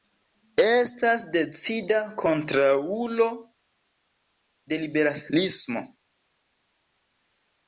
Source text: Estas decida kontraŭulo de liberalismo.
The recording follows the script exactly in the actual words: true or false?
true